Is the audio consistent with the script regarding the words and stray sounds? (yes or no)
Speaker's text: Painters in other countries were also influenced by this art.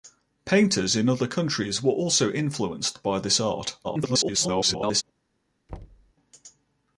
no